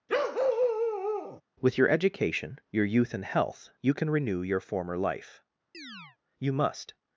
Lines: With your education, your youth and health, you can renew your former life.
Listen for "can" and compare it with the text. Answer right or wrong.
right